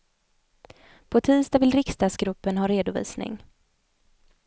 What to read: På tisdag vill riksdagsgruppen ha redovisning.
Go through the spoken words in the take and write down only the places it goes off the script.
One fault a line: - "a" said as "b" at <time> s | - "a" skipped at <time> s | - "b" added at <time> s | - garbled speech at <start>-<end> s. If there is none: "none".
none